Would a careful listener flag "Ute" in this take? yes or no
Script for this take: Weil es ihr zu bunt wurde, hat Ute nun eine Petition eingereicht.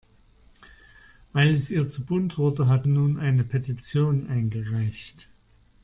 yes